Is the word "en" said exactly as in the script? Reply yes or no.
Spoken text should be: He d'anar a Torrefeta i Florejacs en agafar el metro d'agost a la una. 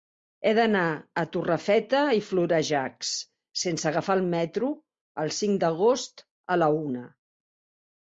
no